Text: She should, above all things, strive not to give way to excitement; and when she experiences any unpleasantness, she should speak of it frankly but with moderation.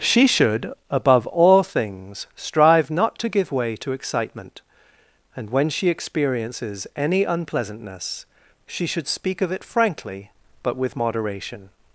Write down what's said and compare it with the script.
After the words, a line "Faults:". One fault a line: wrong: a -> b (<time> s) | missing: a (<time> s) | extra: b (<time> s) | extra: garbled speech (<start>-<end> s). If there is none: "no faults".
She should, above all things, strive not to give way to excitement; and when she experiences any unpleasantness, she should speak of it frankly but with moderation.
Faults:
no faults